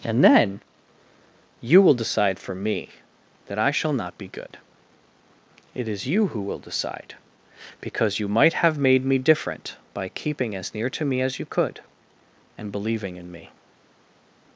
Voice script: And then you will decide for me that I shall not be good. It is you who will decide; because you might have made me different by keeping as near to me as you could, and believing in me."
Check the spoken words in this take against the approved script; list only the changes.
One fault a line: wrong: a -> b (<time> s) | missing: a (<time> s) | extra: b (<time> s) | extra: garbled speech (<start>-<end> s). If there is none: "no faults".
no faults